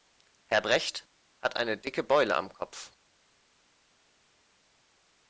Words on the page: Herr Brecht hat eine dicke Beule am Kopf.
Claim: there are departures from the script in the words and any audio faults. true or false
false